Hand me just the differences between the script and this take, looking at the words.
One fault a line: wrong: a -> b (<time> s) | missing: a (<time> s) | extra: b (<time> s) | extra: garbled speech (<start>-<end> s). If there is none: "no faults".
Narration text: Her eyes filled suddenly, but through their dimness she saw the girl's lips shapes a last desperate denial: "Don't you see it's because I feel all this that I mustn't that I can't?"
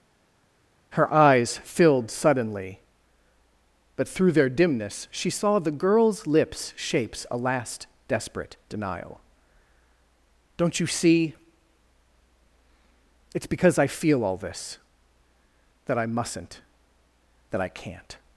no faults